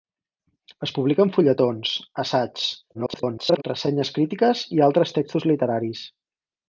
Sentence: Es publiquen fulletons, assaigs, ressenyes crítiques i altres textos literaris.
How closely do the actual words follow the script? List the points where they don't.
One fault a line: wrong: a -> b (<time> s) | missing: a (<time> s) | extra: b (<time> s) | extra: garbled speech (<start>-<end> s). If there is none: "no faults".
extra: garbled speech (2.9-3.6 s)